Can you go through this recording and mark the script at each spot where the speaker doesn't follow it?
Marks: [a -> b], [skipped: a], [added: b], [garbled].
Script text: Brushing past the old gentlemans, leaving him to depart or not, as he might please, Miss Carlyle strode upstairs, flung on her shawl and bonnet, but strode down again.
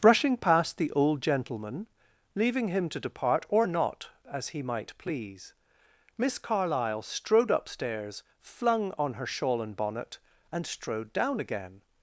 Brushing past the old [gentlemans, -> gentleman] leaving him to depart or not, as he might please, Miss Carlyle strode upstairs, flung on her shawl and bonnet, [but -> and] strode down again.